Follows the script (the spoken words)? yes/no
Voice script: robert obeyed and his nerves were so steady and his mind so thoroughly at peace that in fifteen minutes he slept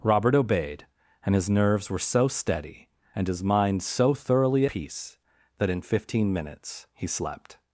no